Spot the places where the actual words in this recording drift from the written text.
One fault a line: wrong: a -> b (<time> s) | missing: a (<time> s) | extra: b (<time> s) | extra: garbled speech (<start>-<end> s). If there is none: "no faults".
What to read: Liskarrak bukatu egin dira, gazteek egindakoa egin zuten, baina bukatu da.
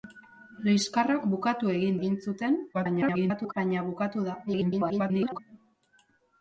missing: dira gazteek egindakoa (2.0 s)
extra: garbled speech (2.7-3.5 s)
extra: garbled speech (4.5-5.4 s)